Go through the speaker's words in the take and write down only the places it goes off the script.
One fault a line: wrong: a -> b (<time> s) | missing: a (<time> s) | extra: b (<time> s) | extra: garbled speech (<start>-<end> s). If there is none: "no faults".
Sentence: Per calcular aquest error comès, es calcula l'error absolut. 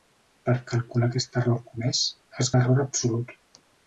missing: calcula (2.5 s)